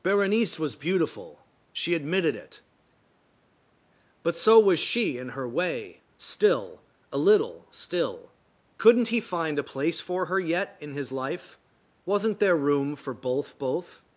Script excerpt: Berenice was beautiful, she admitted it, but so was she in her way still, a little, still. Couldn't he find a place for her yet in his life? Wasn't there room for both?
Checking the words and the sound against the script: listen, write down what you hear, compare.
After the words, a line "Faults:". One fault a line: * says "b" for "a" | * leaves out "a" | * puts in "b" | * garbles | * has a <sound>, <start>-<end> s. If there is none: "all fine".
Berenice was beautiful, she admitted it, but so was she in her way still, a little, still. Couldn't he find a place for her yet in his life? Wasn't there room for both both?
Faults:
* puts in "both"